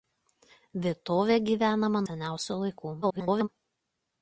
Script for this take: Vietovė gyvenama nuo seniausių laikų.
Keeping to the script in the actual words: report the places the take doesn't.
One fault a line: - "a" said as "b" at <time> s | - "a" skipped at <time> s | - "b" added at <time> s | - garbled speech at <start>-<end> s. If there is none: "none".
- "nuo" skipped at 2.0 s
- garbled speech at 3.0-3.5 s